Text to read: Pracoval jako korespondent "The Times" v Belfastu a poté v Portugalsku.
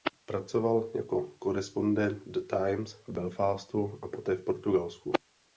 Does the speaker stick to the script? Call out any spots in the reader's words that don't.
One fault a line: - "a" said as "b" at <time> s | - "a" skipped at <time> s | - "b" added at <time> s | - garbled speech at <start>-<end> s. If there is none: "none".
none